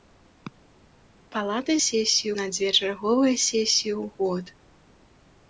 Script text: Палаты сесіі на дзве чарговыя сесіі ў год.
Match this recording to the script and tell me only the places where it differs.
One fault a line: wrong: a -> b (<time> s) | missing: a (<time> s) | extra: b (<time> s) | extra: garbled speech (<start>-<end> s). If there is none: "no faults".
no faults